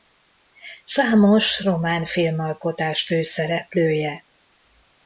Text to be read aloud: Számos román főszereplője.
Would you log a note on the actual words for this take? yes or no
yes